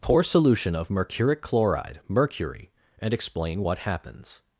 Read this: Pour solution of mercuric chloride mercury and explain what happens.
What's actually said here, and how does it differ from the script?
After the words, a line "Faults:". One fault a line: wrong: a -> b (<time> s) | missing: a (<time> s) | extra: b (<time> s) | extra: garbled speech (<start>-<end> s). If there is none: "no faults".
Pour solution of mercuric chloride mercury and explain what happens.
Faults:
no faults